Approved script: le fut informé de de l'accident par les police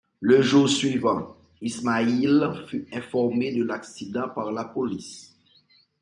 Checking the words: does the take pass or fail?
fail